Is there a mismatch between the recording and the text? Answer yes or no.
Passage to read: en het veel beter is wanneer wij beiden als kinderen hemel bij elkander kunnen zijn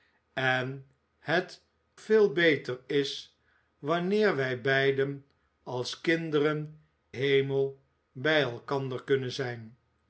no